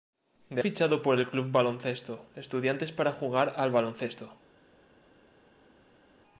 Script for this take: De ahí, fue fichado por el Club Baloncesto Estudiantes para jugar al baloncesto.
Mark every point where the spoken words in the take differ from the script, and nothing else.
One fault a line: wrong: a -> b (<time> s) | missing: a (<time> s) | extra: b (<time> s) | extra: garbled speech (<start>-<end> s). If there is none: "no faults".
missing: ahí fue (0.6 s)